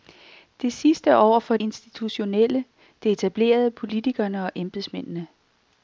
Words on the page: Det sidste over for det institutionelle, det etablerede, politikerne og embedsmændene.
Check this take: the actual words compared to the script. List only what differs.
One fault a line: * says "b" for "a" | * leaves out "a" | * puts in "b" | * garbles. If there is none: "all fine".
* leaves out "det"